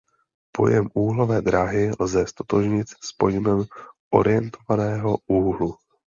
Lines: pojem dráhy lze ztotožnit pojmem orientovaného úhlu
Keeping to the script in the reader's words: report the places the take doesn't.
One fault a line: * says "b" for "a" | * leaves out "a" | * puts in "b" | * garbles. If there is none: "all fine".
* puts in "úhlové"
* puts in "s"